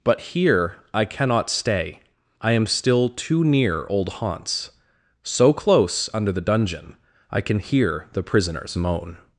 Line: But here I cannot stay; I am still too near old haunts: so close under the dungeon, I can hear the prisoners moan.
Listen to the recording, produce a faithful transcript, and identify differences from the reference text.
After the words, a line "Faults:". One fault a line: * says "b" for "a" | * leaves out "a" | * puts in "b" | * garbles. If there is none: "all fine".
But here I cannot stay; I am still too near old haunts: so close under the dungeon, I can hear the prisoners moan.
Faults:
all fine